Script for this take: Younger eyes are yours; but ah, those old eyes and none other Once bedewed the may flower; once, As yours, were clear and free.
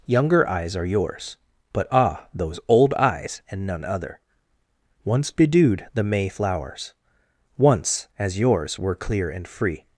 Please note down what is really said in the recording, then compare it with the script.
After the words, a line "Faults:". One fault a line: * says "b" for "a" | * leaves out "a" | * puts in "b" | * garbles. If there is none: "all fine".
Younger eyes are yours; but ah, those old eyes and none other Once bedewed the may flowers; once, As yours, were clear and free.
Faults:
* says "flowers" for "flower"